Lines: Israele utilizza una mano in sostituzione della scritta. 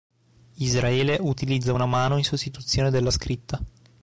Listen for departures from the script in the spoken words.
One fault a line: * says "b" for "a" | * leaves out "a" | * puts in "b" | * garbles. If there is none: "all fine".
all fine